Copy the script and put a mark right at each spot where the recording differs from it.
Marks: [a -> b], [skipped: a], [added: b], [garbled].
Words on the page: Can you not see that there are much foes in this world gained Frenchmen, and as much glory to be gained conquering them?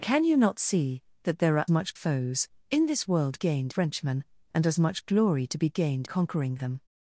Can you not see that there are much foes in this world gained Frenchmen, and as much glory to be gained conquering them?